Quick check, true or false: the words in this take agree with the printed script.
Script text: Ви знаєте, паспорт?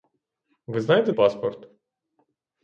true